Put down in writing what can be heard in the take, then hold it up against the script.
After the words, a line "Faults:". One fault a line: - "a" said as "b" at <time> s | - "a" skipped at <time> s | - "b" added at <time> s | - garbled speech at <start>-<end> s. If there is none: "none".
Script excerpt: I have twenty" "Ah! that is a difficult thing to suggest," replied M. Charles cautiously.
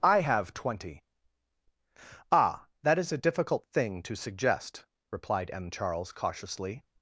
I have twenty" "Ah! that is a difficult thing to suggest," replied M. Charles cautiously.
Faults:
none